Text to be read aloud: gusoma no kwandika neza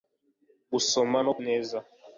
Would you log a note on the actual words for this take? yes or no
yes